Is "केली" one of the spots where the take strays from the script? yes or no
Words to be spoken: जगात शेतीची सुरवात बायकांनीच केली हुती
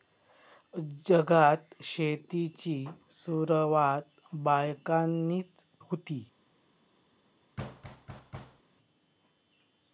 yes